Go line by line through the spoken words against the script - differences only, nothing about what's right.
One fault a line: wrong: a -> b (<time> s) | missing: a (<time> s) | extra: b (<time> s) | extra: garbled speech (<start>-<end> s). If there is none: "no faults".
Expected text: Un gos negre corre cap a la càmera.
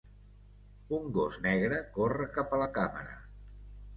no faults